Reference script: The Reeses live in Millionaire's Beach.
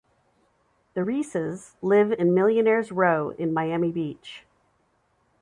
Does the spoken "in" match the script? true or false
true